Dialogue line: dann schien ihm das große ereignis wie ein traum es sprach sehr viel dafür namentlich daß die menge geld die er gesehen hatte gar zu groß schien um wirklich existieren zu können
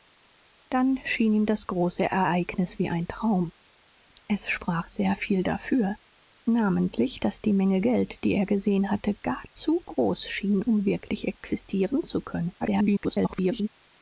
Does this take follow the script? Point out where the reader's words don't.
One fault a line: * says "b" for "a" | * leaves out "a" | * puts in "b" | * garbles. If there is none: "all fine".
* garbles